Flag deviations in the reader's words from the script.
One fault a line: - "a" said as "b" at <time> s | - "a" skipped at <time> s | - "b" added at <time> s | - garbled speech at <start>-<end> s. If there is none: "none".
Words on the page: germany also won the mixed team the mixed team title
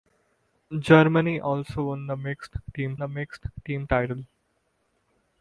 none